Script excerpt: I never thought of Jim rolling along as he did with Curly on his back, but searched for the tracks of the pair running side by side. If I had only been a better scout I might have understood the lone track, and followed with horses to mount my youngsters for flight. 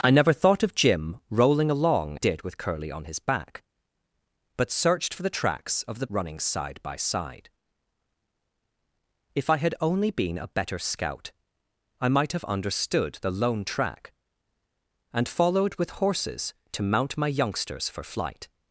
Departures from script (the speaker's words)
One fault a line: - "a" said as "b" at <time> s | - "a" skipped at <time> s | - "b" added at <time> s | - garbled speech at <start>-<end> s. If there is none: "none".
- "as he" skipped at 2.2 s
- "pair" skipped at 6.1 s